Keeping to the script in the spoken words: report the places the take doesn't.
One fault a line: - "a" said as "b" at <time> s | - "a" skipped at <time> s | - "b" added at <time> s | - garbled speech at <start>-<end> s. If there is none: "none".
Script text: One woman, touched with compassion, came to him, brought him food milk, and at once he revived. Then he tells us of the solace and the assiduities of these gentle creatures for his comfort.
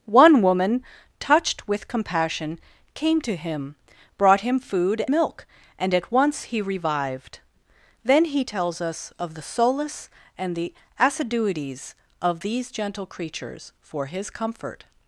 none